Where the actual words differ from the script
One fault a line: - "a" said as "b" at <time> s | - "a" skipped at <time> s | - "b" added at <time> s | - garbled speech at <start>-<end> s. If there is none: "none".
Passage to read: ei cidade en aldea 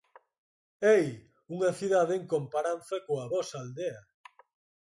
- "unha" added at 1.6 s
- "comparanza coa vosa" added at 2.3 s